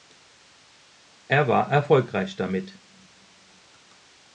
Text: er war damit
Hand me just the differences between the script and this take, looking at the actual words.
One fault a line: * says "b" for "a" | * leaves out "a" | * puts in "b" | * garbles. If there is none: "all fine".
* puts in "erfolgreich"